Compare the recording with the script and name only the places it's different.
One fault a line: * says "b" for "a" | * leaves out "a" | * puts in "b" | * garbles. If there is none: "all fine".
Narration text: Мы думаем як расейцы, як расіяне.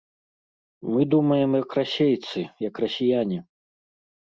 all fine